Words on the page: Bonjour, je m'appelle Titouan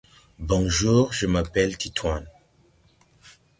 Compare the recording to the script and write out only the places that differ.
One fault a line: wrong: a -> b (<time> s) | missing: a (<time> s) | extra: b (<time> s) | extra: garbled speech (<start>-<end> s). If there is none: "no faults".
no faults